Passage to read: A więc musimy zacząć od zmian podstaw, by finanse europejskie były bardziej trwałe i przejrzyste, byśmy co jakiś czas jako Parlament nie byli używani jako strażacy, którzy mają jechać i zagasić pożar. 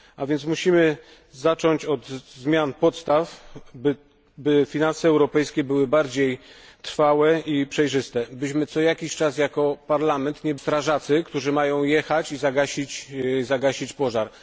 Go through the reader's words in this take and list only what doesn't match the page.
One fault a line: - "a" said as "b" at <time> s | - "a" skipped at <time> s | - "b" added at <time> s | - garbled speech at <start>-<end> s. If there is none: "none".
- "byli używani jako" skipped at 10.6 s